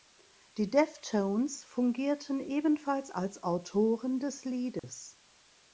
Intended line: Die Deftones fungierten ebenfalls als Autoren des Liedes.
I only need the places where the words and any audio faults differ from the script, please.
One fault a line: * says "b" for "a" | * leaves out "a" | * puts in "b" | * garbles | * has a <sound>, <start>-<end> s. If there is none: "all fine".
* has a dropout, 4.8-4.8 s